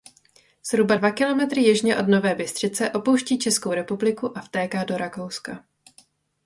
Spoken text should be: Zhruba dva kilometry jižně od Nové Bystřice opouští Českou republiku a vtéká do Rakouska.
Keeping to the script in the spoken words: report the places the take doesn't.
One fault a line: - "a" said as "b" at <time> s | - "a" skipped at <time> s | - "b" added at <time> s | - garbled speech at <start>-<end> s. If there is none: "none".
none